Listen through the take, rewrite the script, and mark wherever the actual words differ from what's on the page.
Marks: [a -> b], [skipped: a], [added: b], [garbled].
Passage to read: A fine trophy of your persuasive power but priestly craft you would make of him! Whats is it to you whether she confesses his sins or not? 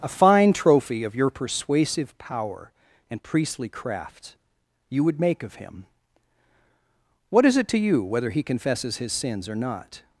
A fine trophy of your persuasive power [but -> and] priestly craft you would make of him! [Whats -> What] is it to you whether [she -> he] confesses his sins or not?